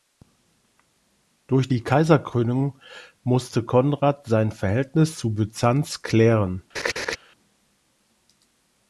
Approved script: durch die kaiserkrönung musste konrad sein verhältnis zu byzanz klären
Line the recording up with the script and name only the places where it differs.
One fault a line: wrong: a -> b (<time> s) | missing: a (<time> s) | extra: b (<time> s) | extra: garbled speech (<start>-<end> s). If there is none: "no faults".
no faults